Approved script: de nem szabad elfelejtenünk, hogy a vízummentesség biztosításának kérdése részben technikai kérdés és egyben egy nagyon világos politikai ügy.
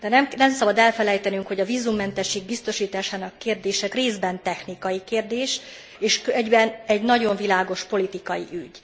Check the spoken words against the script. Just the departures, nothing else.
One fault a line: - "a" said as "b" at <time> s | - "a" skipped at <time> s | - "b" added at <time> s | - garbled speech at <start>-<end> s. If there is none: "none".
none